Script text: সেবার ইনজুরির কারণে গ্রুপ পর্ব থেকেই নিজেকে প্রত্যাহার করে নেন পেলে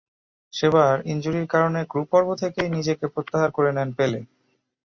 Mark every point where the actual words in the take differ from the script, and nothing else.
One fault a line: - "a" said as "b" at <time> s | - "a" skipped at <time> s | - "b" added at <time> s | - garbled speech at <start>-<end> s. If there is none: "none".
none